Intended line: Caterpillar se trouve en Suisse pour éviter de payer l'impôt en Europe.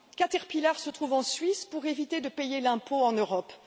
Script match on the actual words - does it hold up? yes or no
yes